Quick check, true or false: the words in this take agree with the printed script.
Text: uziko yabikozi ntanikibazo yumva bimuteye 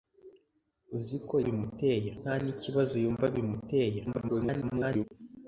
false